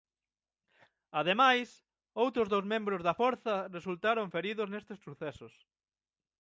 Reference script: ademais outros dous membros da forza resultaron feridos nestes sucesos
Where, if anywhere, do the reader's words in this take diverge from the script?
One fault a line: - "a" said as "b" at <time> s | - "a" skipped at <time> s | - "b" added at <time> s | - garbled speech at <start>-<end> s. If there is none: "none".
none